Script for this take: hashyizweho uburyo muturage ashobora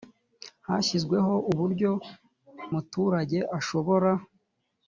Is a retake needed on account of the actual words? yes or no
no